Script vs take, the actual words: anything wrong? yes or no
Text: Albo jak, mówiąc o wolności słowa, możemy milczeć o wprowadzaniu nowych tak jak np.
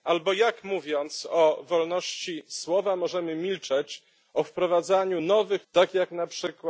no